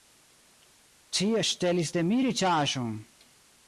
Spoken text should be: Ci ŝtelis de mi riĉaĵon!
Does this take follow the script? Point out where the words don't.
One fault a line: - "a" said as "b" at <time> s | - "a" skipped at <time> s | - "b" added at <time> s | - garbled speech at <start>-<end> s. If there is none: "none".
none